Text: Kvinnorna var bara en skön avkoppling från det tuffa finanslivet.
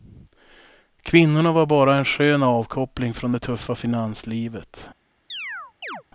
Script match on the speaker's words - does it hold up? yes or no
yes